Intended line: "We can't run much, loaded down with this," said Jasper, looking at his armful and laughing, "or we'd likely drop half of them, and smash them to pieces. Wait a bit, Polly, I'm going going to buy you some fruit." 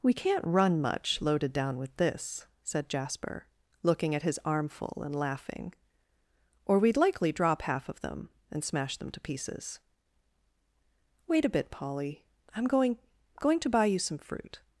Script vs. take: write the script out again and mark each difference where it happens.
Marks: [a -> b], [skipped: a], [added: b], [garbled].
"We can't run much, loaded down with this," said Jasper, looking at his armful and laughing, "or we'd likely drop half of them, and smash them to pieces. Wait a bit, Polly, I'm going going to buy you some fruit."